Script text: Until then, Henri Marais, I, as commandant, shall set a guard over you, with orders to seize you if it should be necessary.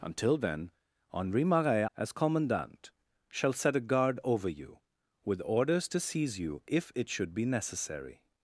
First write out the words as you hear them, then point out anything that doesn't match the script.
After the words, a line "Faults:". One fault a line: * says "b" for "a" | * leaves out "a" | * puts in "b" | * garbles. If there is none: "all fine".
Until then, Henri Marais, as commandant, shall set a guard over you, with orders to seize you if it should be necessary.
Faults:
* leaves out "I"